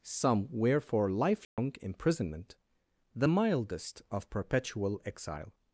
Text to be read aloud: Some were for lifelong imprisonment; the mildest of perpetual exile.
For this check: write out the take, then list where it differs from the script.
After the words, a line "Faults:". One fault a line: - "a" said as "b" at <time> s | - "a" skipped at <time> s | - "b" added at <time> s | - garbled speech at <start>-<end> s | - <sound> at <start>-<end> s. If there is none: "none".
Some were for lifelong imprisonment; the mildest of perpetual exile.
Faults:
- dropout at 1.4-1.6 s